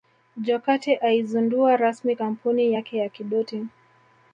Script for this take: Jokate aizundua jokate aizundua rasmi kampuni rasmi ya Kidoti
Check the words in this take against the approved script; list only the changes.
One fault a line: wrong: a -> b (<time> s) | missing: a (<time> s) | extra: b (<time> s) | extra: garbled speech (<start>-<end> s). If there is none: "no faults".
missing: jokate aizundua (1.8 s)
wrong: rasmi -> yake (2.7 s)